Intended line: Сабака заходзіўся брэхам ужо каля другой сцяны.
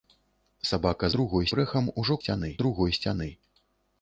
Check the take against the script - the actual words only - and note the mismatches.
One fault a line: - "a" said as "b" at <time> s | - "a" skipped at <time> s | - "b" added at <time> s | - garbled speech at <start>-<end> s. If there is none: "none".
- "заходзіўся" said as "другой" at 1.1 s
- "каля" said as "сцяны" at 2.2 s